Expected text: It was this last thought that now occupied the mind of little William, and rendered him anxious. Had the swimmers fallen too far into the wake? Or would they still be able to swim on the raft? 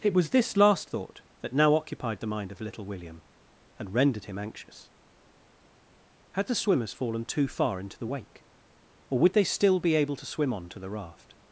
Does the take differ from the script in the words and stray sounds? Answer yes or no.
yes